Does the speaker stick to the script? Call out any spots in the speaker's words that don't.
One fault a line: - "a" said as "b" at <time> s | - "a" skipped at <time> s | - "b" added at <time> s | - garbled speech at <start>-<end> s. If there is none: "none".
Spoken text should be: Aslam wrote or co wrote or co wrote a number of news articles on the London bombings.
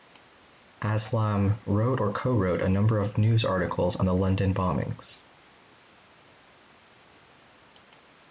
- "or co wrote" skipped at 2.6 s